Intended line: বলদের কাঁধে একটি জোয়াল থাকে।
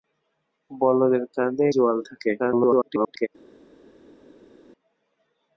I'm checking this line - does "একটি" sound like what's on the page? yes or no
no